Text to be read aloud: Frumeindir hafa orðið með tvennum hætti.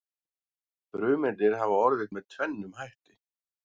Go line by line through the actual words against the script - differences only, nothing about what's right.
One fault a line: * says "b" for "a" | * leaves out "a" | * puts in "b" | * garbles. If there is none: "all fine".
all fine